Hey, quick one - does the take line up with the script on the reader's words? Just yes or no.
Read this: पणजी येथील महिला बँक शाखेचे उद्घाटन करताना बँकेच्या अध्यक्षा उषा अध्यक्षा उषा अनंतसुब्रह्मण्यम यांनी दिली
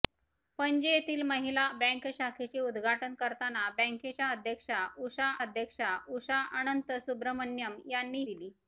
yes